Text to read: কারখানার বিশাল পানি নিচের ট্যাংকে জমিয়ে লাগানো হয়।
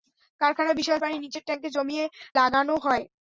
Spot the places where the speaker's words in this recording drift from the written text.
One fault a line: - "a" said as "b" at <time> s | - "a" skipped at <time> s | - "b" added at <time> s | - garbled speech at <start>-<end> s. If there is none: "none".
none